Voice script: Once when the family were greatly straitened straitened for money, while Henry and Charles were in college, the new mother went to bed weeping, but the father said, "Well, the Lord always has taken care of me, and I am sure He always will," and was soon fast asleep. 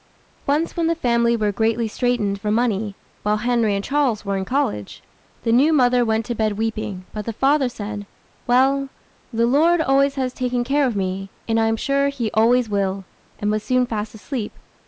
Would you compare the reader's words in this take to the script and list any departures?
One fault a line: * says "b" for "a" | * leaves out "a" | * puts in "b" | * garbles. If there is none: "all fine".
* leaves out "straitened"